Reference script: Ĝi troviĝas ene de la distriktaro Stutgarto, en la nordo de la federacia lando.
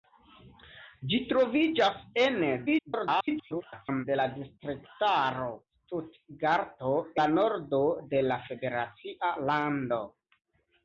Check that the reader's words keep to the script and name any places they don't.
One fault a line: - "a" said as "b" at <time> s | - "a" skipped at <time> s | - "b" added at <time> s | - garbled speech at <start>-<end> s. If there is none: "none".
- garbled speech at 2.7-4.1 s
- "en" skipped at 6.9 s